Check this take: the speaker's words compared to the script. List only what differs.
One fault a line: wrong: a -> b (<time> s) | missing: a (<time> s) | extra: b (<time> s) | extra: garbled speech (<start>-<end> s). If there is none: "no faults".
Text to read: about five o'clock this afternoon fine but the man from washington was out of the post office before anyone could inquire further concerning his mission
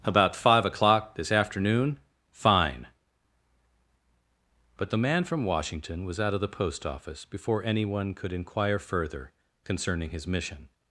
no faults